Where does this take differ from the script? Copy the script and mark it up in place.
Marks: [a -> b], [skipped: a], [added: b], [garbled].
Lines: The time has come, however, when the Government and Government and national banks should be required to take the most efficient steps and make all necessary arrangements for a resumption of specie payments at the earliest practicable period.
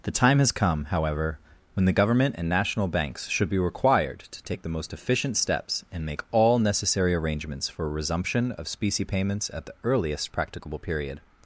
The time has come, however, when the Government and [skipped: Government and] national banks should be required to take the most efficient steps and make all necessary arrangements for a resumption of specie payments at the earliest practicable period.